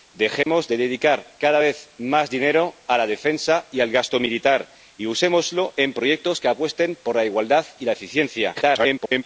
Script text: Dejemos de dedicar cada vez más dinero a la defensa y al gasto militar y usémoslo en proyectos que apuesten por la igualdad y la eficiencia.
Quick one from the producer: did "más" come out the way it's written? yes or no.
yes